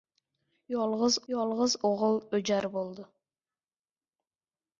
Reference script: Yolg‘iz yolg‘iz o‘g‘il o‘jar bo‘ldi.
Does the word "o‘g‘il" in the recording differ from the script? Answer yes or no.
no